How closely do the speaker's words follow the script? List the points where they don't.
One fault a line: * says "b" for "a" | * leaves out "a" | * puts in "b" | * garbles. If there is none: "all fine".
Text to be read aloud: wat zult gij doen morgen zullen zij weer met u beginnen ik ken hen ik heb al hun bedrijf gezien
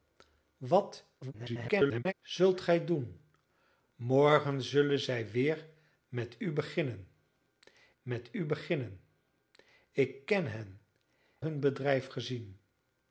* garbles
* says "met u beginnen" for "ik ken hen"
* says "ken hen" for "heb al"